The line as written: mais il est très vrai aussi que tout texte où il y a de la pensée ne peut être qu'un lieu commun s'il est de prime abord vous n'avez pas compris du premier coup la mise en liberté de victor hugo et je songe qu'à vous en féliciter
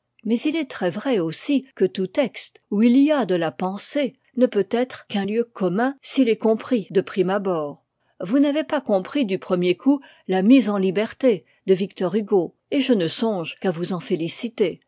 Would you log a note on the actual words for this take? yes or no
yes